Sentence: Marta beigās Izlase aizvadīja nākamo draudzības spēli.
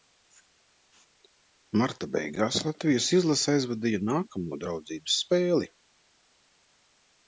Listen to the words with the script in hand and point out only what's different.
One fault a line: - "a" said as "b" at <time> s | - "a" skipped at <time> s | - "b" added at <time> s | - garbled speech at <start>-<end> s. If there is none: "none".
- "Latvijas" added at 2.7 s